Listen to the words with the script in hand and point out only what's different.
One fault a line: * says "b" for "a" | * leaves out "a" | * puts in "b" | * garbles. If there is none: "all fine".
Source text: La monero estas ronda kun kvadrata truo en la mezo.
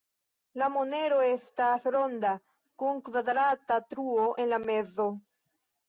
all fine